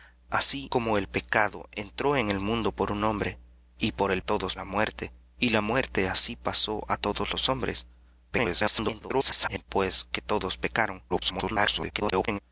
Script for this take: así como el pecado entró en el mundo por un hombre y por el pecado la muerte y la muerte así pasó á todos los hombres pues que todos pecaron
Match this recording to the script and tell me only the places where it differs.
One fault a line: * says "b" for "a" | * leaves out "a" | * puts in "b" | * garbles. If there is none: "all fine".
* says "todos" for "pecado"
* garbles
* garbles